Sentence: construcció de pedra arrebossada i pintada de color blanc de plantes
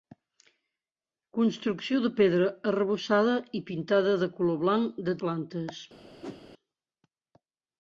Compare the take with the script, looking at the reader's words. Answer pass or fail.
pass